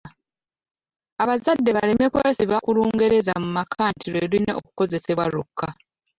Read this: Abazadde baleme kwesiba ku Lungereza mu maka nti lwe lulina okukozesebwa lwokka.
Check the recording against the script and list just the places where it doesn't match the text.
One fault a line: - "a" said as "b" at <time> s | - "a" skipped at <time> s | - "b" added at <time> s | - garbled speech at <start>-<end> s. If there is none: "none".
none